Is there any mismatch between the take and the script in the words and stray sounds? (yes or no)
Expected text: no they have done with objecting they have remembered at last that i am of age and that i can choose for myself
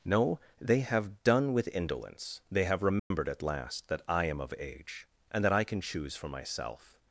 yes